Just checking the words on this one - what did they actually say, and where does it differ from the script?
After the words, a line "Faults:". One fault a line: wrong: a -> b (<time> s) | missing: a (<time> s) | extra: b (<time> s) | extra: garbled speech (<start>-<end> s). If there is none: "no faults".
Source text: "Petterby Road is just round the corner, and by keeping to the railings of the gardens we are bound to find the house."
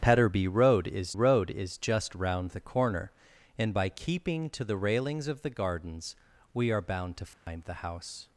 "Petterby Road is Road is just round the corner, and by keeping to the railings of the gardens we are bound to find the house."
Faults:
extra: Road is (1.1 s)